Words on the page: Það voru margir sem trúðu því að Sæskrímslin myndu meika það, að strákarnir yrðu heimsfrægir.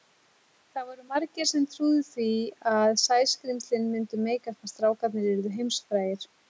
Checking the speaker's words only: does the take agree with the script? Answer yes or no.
no